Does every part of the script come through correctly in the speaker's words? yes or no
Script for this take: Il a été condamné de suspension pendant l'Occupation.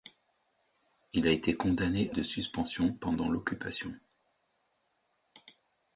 yes